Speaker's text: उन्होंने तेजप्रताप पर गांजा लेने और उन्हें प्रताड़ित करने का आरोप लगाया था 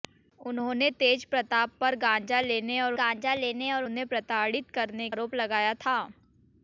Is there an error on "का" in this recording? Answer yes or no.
yes